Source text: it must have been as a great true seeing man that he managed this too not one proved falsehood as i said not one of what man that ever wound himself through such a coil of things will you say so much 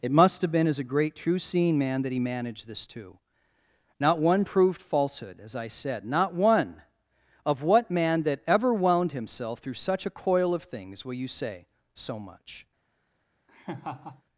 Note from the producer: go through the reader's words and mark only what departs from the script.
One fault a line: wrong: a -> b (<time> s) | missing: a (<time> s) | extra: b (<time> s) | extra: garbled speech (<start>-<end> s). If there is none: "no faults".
no faults